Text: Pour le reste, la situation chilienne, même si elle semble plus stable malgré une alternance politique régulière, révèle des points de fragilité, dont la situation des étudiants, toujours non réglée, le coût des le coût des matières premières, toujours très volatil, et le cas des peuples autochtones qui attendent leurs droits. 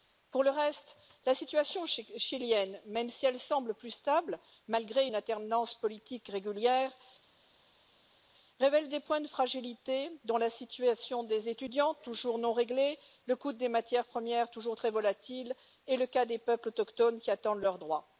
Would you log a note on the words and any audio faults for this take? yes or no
yes